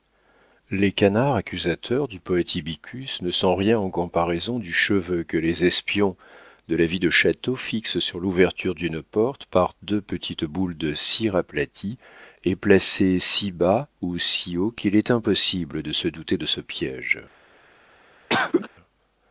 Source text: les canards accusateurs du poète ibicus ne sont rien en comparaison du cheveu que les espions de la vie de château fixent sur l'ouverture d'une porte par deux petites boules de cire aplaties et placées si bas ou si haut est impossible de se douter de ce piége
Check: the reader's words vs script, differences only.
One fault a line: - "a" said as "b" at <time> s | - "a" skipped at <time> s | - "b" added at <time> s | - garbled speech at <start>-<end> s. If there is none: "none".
- "qu'il" added at 14.7 s